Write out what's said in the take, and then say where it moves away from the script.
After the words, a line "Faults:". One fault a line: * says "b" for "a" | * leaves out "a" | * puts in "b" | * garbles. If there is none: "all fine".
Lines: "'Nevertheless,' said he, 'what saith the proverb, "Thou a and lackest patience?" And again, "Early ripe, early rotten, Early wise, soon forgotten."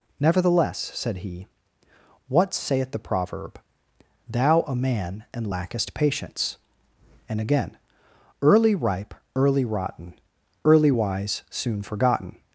"'Nevertheless,' said he, 'what saith the proverb, "Thou a man, and lackest patience?" And again, "Early ripe, early rotten, Early wise, soon forgotten."
Faults:
* puts in "man"